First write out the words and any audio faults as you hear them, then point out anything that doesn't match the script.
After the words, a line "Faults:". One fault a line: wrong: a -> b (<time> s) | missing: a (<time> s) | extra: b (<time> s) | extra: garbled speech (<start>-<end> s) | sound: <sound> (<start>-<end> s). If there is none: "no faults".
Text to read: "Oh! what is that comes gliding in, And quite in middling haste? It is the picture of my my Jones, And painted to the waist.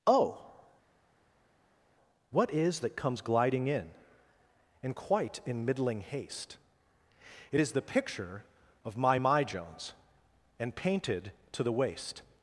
"Oh! what is that comes gliding in, And quite in middling haste? It is the picture of my my Jones, And painted to the waist.
Faults:
no faults